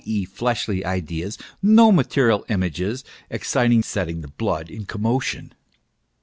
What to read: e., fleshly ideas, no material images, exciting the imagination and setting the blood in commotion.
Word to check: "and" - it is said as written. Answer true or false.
false